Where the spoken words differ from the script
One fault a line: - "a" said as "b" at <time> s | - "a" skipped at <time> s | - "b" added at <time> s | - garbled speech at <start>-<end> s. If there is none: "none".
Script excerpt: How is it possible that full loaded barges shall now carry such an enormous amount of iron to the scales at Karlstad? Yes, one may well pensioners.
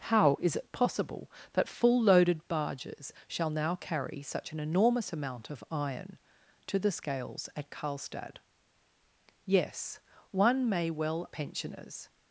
none